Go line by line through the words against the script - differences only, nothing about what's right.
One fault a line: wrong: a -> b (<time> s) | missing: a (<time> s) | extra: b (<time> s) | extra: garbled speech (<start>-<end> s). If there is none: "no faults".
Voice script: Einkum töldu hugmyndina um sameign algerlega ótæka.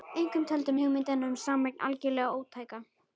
no faults